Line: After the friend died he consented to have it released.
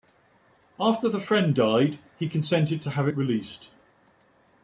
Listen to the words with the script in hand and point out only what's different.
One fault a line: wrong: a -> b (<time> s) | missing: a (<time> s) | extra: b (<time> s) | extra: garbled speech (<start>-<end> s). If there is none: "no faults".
no faults